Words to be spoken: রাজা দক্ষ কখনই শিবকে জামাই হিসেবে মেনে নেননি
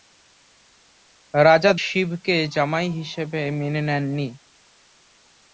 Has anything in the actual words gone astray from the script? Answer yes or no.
yes